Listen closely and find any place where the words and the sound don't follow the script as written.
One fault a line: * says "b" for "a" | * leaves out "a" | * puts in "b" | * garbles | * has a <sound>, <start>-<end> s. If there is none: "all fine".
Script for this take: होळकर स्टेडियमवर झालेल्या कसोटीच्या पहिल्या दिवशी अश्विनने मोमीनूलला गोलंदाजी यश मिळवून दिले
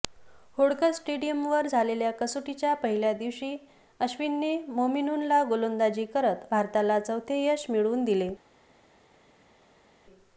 * puts in "करत भारताला चौथे"